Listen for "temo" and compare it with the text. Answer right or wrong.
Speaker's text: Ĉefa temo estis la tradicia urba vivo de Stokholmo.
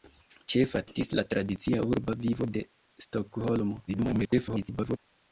wrong